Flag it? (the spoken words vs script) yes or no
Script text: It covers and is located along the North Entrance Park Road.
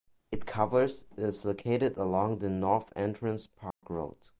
yes